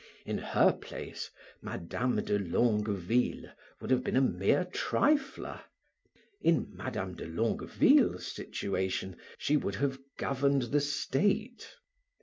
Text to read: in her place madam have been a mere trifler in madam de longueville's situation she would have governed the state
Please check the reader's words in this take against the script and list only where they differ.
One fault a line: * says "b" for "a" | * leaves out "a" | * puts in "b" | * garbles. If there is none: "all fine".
* puts in "de longueville would"